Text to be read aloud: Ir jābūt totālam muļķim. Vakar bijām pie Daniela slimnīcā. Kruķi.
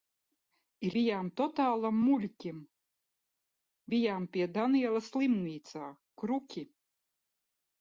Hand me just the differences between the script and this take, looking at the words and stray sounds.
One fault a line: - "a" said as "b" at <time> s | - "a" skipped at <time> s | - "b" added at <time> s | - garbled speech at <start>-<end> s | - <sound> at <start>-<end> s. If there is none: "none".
- "jābūt" said as "bijām" at 1.0 s
- "Vakar" skipped at 2.6 s